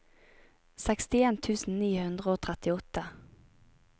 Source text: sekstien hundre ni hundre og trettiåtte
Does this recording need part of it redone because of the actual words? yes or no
yes